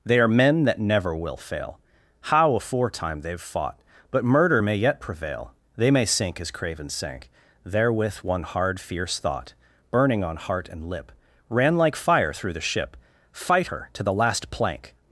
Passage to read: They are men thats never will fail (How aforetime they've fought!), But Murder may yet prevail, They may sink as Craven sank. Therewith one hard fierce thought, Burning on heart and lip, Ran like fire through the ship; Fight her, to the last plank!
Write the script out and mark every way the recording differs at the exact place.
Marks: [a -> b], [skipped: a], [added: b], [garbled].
They are men [thats -> that] never will fail (How aforetime they've fought!), But Murder may yet prevail, They may sink as Craven sank. Therewith one hard fierce thought, Burning on heart and lip, Ran like fire through the ship; Fight her, to the last plank!